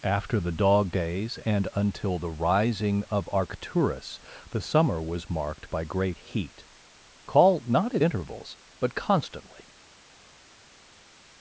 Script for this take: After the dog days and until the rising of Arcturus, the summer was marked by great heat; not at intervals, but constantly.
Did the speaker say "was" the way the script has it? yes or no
yes